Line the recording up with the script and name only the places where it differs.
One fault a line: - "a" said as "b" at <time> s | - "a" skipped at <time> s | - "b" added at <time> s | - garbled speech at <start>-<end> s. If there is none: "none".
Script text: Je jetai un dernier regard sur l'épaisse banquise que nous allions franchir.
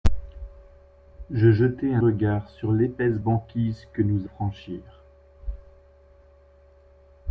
- "dernier" skipped at 2.0 s
- "allions" skipped at 4.3 s